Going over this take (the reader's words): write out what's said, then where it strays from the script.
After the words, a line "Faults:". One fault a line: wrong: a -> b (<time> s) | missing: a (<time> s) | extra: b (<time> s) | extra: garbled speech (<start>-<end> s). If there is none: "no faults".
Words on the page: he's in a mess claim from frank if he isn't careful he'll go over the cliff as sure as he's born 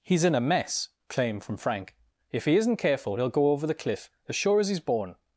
he's in a mess claim from frank if he isn't careful he'll go over the cliff as sure as he's born
Faults:
no faults